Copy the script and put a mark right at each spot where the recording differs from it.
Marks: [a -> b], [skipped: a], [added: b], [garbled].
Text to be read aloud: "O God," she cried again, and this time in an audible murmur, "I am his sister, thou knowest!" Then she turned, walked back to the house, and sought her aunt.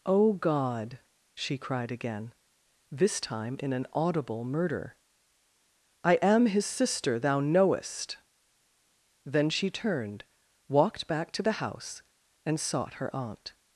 "O God," she cried again, [skipped: and] this time in an audible [murmur, -> murder] "I am his sister, thou knowest!" Then she turned, walked back to the house, and sought her aunt.